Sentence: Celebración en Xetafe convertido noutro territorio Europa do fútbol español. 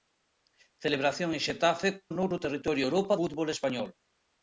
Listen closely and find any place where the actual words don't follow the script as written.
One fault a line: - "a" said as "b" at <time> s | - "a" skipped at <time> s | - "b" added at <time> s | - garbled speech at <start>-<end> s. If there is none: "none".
- "convertido" skipped at 1.9 s
- "do" skipped at 3.1 s